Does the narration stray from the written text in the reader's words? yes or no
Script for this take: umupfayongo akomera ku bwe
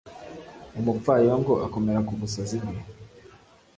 yes